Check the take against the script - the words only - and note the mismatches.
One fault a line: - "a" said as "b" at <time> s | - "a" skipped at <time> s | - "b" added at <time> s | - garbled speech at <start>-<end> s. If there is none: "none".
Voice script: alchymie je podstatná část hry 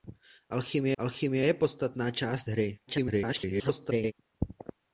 - "alchymie" added at 1.0 s
- garbled speech at 2.9-4.1 s